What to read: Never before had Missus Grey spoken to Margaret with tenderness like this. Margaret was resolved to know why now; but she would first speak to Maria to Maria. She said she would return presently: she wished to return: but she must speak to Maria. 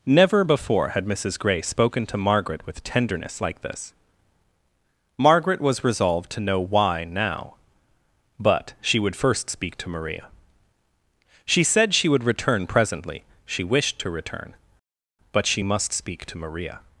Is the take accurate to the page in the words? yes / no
no